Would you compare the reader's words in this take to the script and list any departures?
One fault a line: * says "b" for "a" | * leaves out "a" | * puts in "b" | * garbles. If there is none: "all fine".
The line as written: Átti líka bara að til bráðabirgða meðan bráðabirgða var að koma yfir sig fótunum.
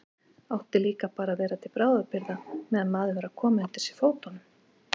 * puts in "vera"
* says "maður" for "bráðabirgða"
* says "undir" for "yfir"